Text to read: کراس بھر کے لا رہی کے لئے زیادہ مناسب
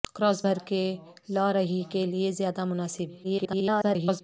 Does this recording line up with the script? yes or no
no